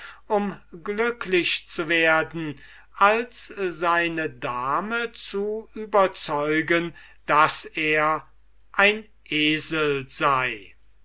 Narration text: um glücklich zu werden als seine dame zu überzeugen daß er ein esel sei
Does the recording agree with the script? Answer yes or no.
yes